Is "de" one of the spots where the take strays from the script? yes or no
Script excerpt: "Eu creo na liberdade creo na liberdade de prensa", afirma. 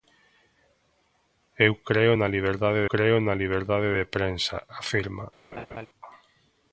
no